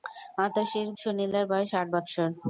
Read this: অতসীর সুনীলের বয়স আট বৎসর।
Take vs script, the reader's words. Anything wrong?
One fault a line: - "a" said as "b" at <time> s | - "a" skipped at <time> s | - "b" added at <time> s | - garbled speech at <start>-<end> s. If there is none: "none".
none